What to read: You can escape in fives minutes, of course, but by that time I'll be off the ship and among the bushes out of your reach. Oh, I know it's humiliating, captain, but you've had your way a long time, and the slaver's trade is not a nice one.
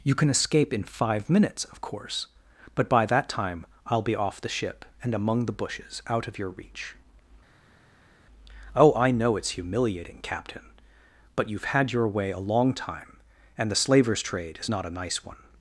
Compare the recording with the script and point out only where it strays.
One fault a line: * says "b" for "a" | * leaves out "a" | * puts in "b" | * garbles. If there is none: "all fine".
* says "five" for "fives"